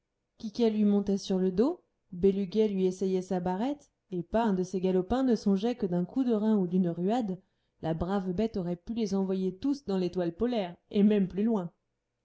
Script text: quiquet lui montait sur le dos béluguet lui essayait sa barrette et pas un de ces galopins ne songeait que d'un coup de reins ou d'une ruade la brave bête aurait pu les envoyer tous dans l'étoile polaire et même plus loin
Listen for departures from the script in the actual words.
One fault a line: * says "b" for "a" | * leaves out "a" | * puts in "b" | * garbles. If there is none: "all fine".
all fine